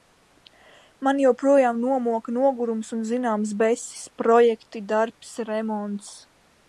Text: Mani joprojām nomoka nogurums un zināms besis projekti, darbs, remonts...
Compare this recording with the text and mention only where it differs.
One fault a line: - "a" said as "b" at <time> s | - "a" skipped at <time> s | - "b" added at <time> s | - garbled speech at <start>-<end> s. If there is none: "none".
none